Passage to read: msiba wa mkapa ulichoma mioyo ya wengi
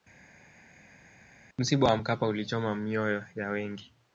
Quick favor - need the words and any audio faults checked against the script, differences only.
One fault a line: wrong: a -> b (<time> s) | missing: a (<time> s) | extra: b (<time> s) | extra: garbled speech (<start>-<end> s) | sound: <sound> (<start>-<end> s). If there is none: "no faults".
no faults